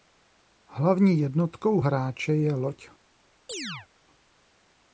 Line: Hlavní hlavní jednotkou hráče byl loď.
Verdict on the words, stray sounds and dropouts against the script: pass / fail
fail